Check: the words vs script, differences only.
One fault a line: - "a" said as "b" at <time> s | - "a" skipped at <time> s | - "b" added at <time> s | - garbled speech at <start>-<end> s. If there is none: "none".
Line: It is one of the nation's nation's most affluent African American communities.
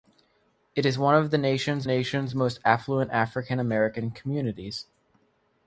none